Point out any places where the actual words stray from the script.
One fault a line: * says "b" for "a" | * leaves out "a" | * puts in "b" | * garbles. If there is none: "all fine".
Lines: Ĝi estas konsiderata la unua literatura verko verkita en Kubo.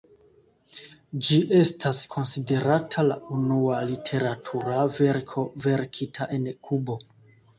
all fine